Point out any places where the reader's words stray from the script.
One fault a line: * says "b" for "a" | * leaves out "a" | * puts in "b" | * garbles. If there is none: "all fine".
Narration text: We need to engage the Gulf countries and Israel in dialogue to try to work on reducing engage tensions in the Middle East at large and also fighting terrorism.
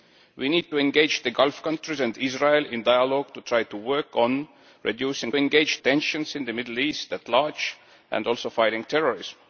all fine